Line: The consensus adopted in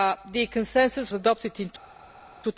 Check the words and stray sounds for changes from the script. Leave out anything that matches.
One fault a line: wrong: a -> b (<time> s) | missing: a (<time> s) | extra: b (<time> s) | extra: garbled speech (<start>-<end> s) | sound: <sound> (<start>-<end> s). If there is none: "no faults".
no faults